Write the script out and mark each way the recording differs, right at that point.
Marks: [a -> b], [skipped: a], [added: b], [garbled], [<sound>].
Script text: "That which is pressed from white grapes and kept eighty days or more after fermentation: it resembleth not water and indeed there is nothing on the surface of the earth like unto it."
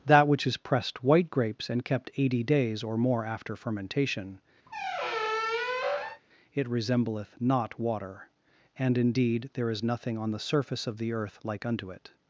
"That which is pressed [skipped: from] white grapes and kept eighty days or more after fermentation: [squeak] it resembleth not water and indeed there is nothing on the surface of the earth like unto it."